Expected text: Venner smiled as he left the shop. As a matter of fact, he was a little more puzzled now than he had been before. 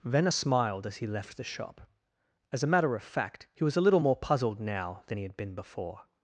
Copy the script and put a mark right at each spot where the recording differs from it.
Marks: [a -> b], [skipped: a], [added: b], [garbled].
Venner smiled as he left the shop. As a matter of fact, he was a little more puzzled now than he had been before.